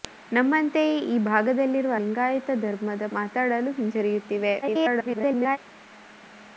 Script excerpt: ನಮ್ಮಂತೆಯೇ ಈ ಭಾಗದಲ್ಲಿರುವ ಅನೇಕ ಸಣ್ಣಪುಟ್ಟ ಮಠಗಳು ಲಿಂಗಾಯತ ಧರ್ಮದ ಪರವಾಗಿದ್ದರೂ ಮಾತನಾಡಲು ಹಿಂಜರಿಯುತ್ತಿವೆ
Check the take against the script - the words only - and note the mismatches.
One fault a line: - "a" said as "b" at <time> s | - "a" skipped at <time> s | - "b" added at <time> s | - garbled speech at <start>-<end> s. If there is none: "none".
- "ಅನೇಕ ಸಣ್ಣಪುಟ್ಟ ಮಠಗಳು" skipped at 1.9 s
- "ಪರವಾಗಿದ್ದರೂ" skipped at 3.1 s
- garbled speech at 4.6-5.6 s